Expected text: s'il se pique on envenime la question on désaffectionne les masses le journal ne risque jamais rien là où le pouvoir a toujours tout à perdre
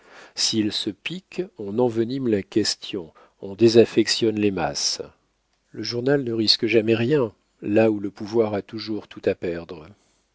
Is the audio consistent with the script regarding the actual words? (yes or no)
yes